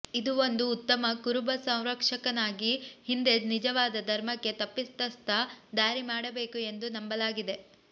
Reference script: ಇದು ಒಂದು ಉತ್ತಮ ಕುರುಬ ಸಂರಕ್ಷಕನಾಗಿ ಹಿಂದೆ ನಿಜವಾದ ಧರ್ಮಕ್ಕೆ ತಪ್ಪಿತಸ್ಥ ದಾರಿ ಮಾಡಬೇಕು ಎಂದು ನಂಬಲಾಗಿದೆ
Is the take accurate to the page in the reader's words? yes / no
yes